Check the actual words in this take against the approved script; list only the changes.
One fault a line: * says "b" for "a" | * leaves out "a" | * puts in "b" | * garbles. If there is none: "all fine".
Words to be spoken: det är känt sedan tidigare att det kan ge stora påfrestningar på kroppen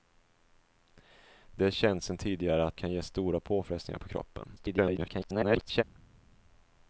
* leaves out "det"
* garbles